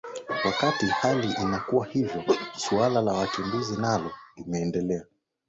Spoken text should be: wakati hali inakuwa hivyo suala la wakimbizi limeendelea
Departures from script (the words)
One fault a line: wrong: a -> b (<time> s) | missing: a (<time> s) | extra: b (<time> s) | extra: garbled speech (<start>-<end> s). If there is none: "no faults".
extra: nalo (3.8 s)